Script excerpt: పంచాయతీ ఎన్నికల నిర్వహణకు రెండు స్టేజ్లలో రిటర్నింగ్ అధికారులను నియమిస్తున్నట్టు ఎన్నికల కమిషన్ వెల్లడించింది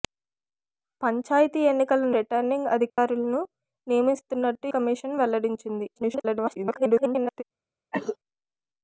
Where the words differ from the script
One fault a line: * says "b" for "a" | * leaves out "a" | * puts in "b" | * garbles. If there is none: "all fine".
* leaves out "నిర్వహణకు రెండు స్టేజ్లలో"
* leaves out "ఎన్నికల"
* garbles